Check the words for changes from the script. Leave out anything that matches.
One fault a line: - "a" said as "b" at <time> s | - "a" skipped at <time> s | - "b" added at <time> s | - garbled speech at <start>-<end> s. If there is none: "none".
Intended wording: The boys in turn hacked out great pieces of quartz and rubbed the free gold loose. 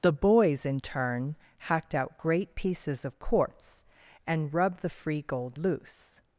none